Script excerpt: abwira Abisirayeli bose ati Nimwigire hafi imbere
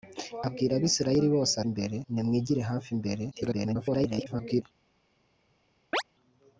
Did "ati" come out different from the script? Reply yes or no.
yes